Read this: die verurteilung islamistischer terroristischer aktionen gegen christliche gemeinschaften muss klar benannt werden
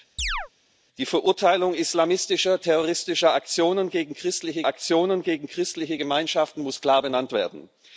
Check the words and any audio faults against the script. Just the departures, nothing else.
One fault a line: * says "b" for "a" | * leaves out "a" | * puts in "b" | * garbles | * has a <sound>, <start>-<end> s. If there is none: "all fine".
* has a chirp, 0.2-0.5 s
* puts in "aktionen gegen christliche"